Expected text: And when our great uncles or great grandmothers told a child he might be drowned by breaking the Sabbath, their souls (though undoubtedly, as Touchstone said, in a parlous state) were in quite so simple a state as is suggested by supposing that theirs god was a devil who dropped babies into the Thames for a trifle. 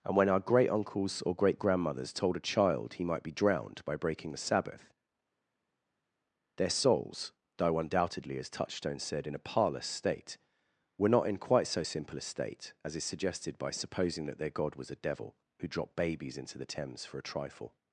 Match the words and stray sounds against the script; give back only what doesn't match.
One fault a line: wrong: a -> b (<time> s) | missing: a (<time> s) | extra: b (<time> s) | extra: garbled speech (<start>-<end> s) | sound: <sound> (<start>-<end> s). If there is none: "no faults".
extra: not (11.1 s)
wrong: theirs -> their (14.4 s)